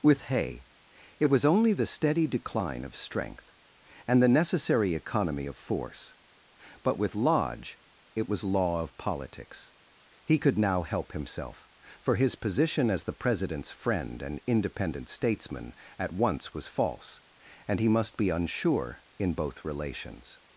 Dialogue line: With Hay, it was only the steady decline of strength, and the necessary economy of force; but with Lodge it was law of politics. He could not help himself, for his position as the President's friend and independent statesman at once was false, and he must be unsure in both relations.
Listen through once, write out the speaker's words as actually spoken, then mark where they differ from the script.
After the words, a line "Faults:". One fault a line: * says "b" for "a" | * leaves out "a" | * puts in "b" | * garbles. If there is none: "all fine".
With Hay, it was only the steady decline of strength, and the necessary economy of force; but with Lodge it was law of politics. He could now help himself, for his position as the President's friend and independent statesman at once was false, and he must be unsure in both relations.
Faults:
* says "now" for "not"